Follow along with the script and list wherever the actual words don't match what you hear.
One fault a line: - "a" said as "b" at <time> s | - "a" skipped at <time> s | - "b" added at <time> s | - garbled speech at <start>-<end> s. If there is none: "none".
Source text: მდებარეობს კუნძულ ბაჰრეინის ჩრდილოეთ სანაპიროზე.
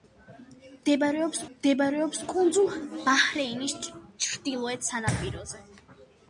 - "მდებარეობს" added at 1.5 s